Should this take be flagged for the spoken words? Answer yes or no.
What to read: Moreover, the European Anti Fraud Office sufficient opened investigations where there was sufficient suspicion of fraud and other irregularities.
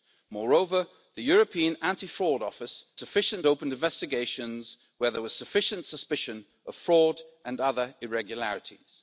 no